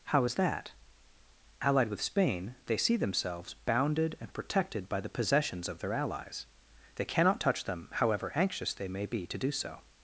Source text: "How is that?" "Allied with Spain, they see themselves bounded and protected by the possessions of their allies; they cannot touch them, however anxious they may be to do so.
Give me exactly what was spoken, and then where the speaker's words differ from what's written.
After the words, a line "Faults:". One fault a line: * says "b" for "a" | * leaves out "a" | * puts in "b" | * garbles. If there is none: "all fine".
"How is that?" "Allied with Spain, they see themselves bounded and protected by the possessions of their allies; they cannot touch them, however anxious they may be to do so.
Faults:
all fine